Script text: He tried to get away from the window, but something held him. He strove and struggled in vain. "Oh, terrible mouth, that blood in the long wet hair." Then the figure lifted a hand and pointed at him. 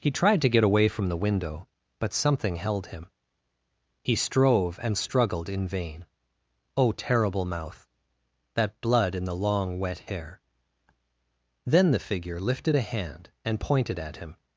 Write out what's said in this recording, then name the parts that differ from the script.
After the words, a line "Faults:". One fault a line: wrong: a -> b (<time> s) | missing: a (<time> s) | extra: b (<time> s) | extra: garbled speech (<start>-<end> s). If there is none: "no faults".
He tried to get away from the window, but something held him. He strove and struggled in vain. "Oh, terrible mouth, that blood in the long wet hair." Then the figure lifted a hand and pointed at him.
Faults:
no faults